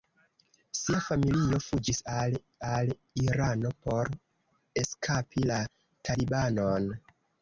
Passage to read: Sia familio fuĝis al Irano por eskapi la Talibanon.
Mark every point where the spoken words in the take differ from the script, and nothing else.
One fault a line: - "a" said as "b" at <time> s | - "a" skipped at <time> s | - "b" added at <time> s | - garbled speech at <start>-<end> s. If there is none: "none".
- "al" added at 2.7 s